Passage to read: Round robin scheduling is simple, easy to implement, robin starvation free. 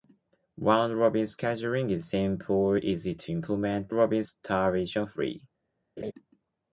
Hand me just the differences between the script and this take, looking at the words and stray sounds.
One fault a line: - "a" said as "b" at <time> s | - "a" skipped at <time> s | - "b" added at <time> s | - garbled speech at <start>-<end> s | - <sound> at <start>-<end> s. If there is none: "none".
- laugh at 6.0-6.1 s